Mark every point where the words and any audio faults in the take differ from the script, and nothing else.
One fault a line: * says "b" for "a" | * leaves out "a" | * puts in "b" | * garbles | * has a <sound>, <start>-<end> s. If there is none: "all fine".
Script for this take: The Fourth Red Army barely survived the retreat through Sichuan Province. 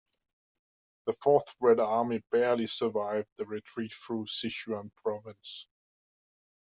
all fine